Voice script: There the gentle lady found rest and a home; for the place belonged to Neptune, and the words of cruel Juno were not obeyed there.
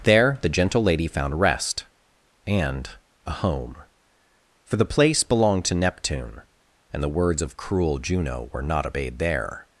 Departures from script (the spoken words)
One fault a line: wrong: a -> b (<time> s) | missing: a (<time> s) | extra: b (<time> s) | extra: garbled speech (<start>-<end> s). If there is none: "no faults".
no faults